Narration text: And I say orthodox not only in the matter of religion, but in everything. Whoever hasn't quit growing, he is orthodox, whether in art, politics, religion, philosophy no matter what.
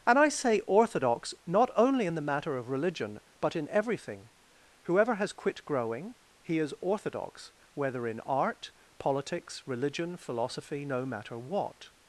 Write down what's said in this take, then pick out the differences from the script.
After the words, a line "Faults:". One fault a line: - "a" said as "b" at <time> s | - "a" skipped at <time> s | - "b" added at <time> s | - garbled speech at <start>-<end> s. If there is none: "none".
And I say orthodox not only in the matter of religion, but in everything. Whoever has quit growing, he is orthodox, whether in art, politics, religion, philosophy no matter what.
Faults:
- "hasn't" said as "has" at 5.2 s